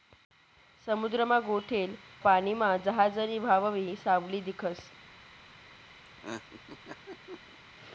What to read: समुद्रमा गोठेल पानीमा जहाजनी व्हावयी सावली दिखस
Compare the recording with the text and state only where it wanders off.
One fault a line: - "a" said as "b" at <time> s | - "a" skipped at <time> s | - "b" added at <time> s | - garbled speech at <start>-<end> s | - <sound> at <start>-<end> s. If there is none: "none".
- laugh at 6.0-7.6 s